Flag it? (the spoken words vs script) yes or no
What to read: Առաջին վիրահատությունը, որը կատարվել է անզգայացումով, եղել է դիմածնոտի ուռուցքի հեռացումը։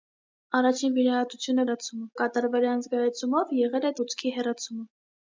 yes